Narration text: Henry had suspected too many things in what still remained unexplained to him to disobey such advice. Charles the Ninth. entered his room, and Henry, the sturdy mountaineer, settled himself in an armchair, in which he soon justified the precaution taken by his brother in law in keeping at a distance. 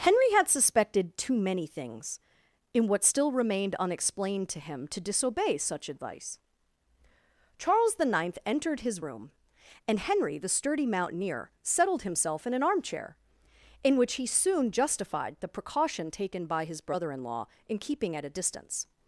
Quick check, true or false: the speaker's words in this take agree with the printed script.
true